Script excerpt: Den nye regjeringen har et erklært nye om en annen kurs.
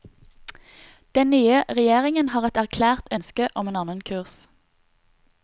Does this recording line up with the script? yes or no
no